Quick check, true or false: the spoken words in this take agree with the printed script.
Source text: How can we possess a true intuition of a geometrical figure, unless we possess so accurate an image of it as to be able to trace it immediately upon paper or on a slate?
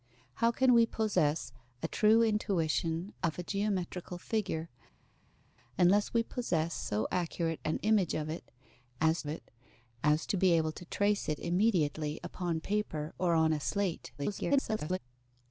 false